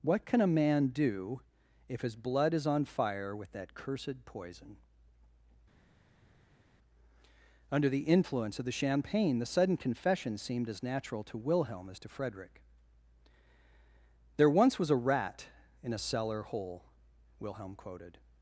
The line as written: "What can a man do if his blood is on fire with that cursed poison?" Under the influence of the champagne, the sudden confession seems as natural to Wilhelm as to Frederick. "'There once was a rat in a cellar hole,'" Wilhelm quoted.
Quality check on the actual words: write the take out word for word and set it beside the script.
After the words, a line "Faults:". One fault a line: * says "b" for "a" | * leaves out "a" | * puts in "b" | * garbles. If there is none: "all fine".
"What can a man do if his blood is on fire with that cursed poison?" Under the influence of the champagne, the sudden confession seemed as natural to Wilhelm as to Frederick. "'There once was a rat in a cellar hole,'" Wilhelm quoted.
Faults:
* says "seemed" for "seems"